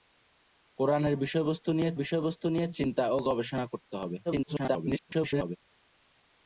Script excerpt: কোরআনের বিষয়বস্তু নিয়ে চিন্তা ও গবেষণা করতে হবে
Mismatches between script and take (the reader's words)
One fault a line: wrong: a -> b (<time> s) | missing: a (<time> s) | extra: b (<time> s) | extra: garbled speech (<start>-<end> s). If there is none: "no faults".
extra: বিষয়বস্তু নিয়ে (1.9 s)
extra: garbled speech (4.3-5.6 s)